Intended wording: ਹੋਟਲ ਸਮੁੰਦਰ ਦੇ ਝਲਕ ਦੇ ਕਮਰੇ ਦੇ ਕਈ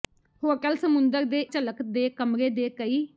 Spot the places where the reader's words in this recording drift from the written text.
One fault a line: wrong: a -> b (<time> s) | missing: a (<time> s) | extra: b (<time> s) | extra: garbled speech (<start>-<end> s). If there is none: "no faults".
no faults